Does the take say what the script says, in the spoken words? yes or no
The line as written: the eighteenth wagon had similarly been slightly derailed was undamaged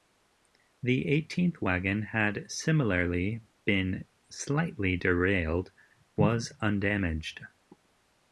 yes